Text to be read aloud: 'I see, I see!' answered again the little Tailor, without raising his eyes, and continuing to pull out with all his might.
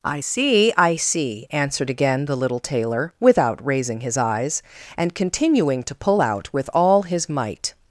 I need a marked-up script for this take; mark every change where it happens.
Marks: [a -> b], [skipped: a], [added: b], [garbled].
'I see, I see!' answered again the little Tailor, without raising his eyes, and continuing to pull out with all his might.